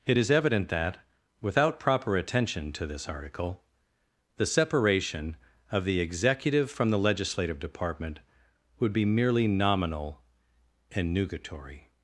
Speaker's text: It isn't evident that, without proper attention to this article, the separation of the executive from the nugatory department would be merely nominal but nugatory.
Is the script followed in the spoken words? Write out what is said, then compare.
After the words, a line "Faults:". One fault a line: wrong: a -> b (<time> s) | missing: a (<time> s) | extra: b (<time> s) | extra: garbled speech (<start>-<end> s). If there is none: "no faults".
It is evident that, without proper attention to this article, the separation of the executive from the legislative department would be merely nominal and nugatory.
Faults:
wrong: isn't -> is (0.2 s)
wrong: nugatory -> legislative (7.0 s)
wrong: but -> and (10.9 s)